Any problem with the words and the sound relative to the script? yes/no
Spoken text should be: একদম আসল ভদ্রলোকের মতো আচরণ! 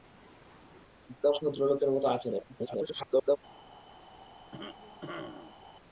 yes